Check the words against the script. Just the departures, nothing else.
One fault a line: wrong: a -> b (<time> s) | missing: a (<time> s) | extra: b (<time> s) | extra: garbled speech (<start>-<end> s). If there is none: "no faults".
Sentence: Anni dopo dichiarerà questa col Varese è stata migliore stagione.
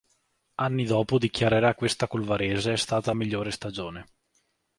no faults